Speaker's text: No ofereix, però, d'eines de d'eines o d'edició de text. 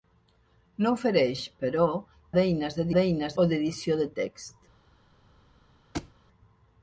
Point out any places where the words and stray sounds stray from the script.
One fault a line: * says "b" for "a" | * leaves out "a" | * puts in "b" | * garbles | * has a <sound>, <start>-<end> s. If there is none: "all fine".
* has a thud, 5.9-6.1 s